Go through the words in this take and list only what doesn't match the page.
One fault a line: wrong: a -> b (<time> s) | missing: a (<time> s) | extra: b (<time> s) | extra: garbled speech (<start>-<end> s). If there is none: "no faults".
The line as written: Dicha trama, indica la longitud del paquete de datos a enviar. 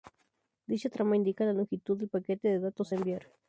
no faults